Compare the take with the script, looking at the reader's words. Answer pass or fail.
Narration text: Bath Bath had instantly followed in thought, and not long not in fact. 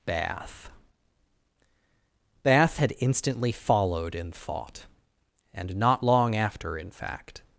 fail